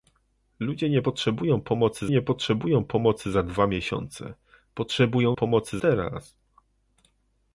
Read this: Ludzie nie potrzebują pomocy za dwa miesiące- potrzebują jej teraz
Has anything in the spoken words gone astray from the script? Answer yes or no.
yes